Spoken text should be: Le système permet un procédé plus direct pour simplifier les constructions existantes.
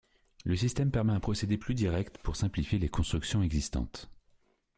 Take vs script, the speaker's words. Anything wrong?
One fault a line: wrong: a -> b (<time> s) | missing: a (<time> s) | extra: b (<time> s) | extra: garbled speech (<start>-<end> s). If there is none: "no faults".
no faults